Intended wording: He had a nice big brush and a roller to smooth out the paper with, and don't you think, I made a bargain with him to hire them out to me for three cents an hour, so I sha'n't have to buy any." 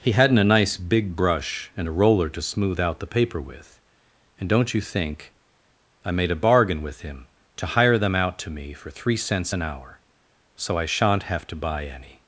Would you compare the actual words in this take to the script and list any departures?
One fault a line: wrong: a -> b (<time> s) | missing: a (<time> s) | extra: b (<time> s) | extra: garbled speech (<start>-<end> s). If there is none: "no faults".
wrong: had -> hadn't (0.1 s)